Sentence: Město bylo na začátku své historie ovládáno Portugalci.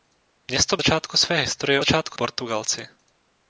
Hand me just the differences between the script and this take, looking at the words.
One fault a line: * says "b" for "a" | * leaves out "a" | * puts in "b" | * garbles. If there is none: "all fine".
* leaves out "bylo na"
* says "začátku" for "ovládáno"